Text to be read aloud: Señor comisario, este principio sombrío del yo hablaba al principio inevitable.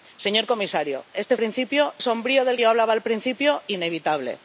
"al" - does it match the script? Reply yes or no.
yes